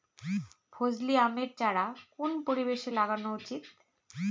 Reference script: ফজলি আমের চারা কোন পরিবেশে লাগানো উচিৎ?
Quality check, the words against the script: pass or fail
pass